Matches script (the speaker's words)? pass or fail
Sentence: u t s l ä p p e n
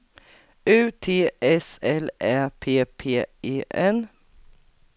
pass